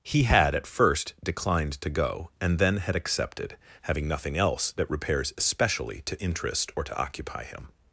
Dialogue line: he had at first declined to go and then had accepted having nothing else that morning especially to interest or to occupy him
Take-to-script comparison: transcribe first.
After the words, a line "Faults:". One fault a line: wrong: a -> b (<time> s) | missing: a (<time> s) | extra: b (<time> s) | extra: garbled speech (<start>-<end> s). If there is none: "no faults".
he had at first declined to go and then had accepted having nothing else that repairs especially to interest or to occupy him
Faults:
wrong: morning -> repairs (4.9 s)